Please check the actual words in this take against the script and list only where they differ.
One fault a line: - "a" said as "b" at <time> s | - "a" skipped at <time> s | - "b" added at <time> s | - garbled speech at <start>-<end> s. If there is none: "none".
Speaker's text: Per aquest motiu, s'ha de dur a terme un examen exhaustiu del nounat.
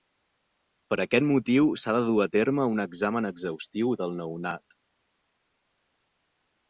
none